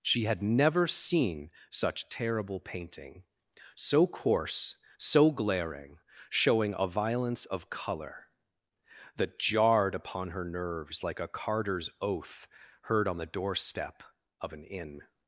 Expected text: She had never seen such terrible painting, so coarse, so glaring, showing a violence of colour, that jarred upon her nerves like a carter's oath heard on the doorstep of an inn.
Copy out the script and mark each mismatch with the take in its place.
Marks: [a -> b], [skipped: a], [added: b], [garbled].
She had never seen such terrible painting, so coarse, so glaring, showing a violence of colour, that jarred upon her nerves like a carter's oath heard on the doorstep of an inn.